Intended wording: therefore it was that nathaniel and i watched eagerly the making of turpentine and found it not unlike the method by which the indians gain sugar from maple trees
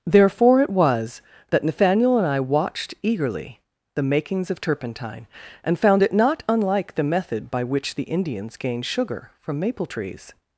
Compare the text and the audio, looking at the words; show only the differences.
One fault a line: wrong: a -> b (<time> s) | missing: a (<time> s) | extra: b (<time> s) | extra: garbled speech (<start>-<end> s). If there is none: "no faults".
wrong: making -> makings (4.0 s)